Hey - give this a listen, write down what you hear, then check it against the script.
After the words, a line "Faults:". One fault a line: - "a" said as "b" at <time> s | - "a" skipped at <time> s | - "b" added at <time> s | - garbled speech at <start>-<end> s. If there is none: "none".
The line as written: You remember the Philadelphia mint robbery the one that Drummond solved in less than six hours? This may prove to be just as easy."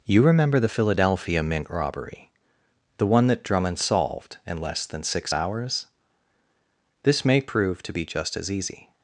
You remember the Philadelphia mint robbery the one that Drummond solved in less than six hours? This may prove to be just as easy."
Faults:
none